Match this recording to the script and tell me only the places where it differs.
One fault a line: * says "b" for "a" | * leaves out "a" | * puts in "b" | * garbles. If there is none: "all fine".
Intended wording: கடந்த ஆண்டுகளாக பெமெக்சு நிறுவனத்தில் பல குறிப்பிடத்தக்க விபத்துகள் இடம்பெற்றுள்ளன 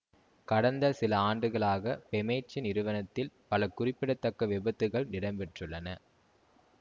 * puts in "சில"